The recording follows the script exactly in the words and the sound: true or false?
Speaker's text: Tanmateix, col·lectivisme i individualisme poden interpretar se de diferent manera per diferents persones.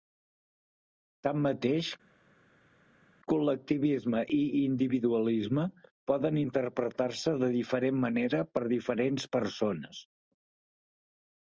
true